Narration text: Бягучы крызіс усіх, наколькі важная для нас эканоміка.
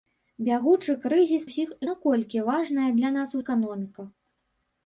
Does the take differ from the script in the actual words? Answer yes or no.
no